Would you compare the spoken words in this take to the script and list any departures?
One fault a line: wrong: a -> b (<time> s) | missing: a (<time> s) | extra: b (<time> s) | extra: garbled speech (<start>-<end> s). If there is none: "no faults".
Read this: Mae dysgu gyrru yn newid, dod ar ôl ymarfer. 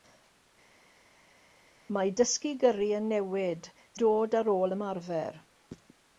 no faults